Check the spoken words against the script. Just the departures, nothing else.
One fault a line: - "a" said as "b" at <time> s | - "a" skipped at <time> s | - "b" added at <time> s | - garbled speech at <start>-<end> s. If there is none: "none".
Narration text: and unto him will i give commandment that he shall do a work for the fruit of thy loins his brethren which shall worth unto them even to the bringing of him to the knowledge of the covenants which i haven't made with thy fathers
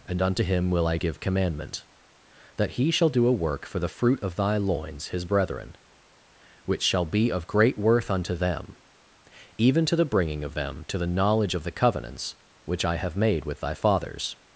- "be of great" added at 7.0 s
- "him" said as "them" at 10.5 s
- "haven't" said as "have" at 13.0 s